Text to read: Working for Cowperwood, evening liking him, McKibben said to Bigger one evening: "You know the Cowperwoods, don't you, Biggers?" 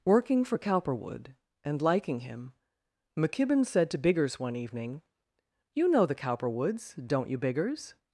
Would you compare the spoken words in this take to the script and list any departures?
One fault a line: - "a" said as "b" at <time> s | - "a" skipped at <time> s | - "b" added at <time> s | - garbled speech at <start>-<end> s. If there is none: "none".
- "evening" said as "and" at 1.6 s
- "Bigger" said as "Biggers" at 4.0 s